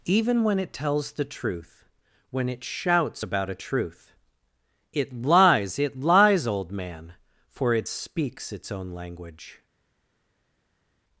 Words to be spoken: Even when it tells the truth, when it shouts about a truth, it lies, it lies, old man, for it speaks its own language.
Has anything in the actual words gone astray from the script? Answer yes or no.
no